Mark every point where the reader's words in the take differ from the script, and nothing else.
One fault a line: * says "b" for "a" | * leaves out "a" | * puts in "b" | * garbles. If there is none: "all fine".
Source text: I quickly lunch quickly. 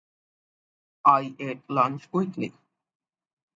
* says "ate" for "quickly"